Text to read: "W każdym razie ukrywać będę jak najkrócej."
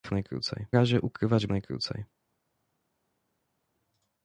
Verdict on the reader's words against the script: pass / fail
fail